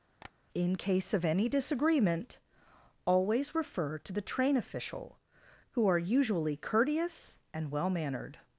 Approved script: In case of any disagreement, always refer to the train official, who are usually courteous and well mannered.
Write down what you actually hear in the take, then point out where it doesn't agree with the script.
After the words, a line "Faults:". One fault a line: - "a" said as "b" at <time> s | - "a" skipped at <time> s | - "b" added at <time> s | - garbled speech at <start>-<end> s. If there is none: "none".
In case of any disagreement, always refer to the train official, who are usually courteous and well mannered.
Faults:
none